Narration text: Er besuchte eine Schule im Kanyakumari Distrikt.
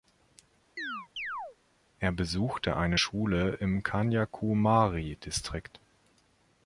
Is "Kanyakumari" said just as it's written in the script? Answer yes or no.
yes